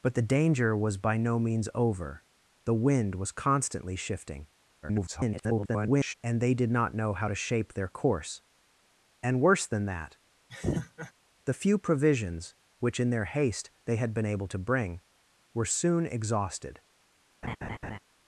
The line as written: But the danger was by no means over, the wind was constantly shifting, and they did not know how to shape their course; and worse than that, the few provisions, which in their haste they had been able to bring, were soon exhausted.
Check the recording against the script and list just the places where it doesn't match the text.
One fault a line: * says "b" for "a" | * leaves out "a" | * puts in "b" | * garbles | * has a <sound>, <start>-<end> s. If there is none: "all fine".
* garbles
* has a laugh, 10.5-11.1 s
* has a laugh, 17.4-18.0 s